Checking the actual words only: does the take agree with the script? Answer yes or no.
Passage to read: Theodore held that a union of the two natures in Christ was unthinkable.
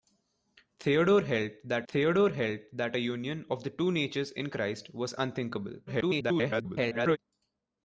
no